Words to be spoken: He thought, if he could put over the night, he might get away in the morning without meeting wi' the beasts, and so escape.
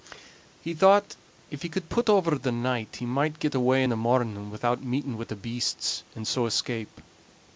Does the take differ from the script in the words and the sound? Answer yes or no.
no